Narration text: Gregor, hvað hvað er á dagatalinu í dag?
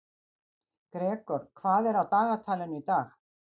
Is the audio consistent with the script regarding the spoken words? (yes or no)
no